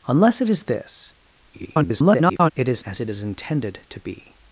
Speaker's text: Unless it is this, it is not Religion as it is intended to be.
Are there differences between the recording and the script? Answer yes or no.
yes